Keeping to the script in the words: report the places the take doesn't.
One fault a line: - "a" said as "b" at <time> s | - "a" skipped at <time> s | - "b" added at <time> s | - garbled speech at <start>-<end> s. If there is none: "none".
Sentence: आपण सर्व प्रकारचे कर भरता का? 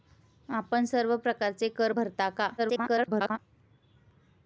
- garbled speech at 2.6-3.4 s